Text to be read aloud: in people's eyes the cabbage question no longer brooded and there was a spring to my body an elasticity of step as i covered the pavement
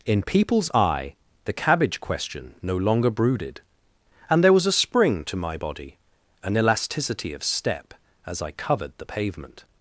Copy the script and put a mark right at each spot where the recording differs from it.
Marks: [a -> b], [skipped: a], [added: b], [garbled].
in people's [eyes -> eye] the cabbage question no longer brooded and there was a spring to my body an elasticity of step as i covered the pavement